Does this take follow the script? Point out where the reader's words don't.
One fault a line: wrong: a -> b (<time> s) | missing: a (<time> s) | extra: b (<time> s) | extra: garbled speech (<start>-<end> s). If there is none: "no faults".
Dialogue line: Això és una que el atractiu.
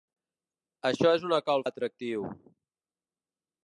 no faults